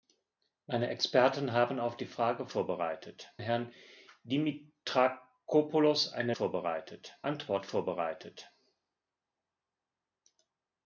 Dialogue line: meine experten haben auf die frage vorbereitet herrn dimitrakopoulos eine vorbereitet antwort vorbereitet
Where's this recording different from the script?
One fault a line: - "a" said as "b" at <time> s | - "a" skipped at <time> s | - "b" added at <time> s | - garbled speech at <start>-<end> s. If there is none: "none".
none